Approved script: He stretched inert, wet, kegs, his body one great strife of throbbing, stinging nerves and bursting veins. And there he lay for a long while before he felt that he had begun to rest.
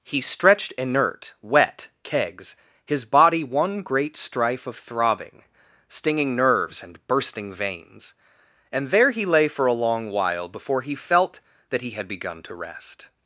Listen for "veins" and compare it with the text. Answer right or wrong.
right